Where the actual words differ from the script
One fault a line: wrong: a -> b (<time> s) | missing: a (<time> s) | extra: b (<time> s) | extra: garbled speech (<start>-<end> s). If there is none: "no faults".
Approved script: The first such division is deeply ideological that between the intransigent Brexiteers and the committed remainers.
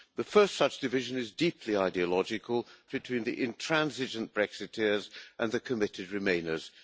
missing: that (2.7 s)